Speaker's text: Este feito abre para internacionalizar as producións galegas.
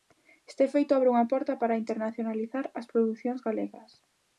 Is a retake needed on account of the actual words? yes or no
yes